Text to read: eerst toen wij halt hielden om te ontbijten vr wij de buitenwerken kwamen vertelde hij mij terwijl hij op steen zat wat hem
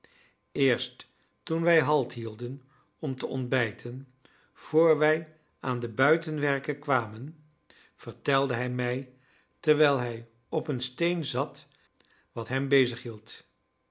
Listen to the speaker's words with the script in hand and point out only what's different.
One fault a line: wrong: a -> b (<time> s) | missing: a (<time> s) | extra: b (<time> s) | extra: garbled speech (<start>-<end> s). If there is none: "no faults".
extra: aan (5.6 s)
extra: een (10.7 s)